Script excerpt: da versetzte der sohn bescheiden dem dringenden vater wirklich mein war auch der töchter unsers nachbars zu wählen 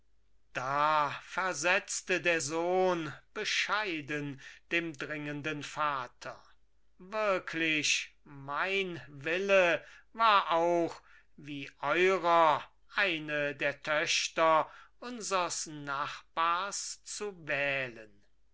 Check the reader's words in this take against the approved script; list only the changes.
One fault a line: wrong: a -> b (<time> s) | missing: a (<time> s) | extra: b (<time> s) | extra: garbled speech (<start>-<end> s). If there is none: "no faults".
extra: wille (9.1 s)
extra: wie eurer eine (11.3 s)